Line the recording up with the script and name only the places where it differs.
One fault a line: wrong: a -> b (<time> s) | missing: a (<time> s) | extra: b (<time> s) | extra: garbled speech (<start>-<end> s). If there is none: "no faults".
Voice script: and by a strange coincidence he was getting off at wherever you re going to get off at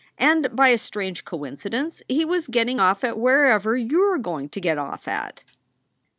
no faults